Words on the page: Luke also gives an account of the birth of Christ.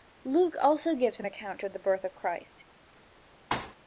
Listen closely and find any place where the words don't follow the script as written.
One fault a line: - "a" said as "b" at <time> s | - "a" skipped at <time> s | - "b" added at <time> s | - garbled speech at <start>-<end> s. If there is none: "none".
none